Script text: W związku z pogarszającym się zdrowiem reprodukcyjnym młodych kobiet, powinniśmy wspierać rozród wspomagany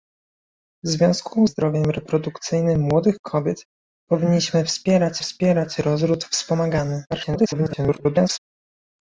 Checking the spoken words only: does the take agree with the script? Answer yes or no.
no